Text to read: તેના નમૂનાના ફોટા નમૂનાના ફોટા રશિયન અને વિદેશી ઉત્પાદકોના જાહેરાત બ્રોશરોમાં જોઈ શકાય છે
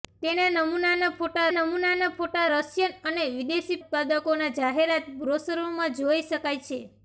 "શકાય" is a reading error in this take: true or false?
false